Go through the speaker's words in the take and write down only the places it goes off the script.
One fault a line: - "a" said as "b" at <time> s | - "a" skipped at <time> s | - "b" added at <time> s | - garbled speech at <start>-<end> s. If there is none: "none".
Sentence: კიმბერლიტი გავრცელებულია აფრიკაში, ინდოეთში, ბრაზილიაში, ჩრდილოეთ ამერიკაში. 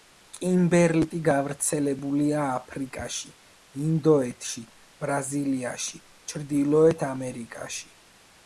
none